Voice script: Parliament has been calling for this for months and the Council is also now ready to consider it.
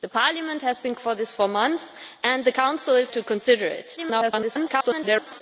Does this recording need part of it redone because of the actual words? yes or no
yes